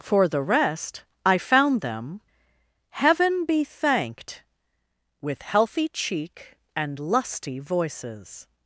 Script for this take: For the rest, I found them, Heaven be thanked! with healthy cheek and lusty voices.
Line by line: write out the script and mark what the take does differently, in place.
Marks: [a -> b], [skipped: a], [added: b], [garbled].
For the rest, I found them, Heaven be thanked! with healthy cheek and lusty voices.